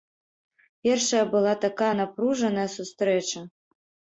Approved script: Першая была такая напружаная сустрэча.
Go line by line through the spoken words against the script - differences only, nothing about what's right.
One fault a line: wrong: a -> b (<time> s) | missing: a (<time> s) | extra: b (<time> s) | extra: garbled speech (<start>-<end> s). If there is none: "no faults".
no faults